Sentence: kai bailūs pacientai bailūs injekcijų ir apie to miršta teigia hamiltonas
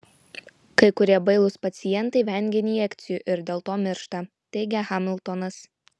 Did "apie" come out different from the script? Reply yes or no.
yes